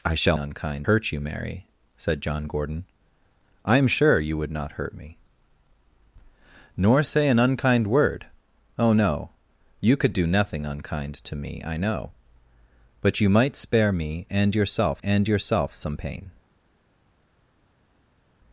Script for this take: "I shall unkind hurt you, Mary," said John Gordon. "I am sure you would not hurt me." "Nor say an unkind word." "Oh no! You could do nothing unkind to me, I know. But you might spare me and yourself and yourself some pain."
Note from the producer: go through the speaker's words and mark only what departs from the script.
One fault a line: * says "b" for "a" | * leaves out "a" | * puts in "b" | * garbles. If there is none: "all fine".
all fine